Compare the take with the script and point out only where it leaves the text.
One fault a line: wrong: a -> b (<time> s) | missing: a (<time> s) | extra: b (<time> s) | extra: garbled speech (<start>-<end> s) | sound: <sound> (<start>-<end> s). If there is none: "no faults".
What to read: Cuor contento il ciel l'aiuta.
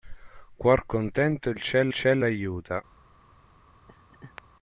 extra: ciel (1.9 s)
sound: laugh (3.9-4.4 s)